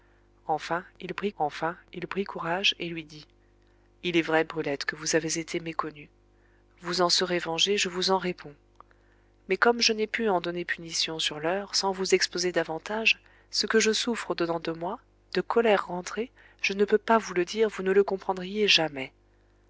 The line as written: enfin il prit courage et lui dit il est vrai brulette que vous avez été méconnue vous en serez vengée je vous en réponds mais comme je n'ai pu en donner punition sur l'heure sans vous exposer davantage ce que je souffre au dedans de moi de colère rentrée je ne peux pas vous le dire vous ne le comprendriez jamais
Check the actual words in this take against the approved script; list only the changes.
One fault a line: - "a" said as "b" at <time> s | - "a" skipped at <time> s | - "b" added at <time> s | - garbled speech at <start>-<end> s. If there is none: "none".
- "enfin il prit" added at 1.4 s